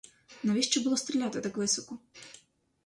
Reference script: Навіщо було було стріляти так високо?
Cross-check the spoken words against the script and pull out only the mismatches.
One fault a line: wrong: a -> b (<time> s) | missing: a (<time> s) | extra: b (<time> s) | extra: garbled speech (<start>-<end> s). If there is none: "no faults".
missing: було (1.0 s)